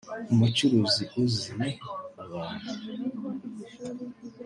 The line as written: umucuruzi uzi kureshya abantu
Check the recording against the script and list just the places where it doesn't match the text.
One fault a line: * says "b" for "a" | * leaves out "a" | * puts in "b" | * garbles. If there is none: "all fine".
* leaves out "kureshya"